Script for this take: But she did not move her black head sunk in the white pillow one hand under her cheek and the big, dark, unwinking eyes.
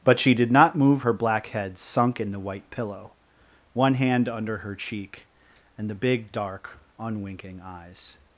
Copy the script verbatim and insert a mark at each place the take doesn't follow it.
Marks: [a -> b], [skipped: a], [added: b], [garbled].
But she did not move her black head sunk in the white pillow one hand under her cheek and the big, dark, unwinking eyes.